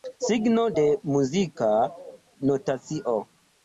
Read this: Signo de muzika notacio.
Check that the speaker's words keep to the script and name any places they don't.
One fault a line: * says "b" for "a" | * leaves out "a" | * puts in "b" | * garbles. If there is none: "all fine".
all fine